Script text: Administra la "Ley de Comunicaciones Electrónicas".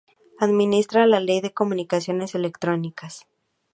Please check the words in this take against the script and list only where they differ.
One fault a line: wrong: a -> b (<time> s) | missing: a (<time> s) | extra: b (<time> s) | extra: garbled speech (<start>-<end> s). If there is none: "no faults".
no faults